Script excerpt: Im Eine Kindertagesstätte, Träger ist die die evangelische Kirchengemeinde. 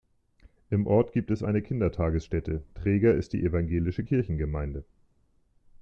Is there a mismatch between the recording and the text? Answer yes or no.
yes